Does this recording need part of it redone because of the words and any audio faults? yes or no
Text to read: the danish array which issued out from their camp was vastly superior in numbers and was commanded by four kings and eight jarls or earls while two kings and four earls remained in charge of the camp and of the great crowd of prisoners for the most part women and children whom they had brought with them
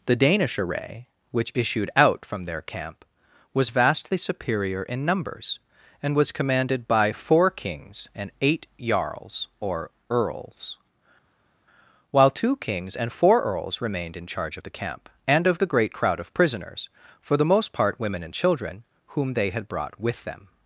no